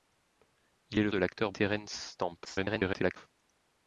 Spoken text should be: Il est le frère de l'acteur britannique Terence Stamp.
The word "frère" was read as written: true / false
false